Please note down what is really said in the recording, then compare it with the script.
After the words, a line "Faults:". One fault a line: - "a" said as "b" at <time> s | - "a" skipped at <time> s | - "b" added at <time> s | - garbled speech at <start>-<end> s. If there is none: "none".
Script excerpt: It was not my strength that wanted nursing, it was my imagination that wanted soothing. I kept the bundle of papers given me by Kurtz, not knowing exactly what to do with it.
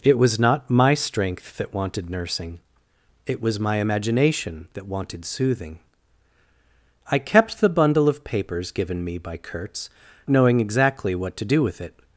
It was not my strength that wanted nursing, it was my imagination that wanted soothing. I kept the bundle of papers given me by Kurtz, knowing exactly what to do with it.
Faults:
- "not" skipped at 9.9 s